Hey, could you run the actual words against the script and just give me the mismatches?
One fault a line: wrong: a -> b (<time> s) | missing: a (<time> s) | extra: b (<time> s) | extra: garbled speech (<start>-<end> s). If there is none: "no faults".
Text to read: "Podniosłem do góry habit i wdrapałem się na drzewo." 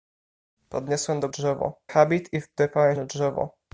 wrong: góry -> drzewo (1.3 s)
missing: się (3.0 s)